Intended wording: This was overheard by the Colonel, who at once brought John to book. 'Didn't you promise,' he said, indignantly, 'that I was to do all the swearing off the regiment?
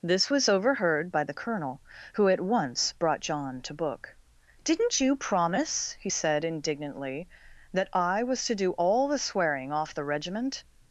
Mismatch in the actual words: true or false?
false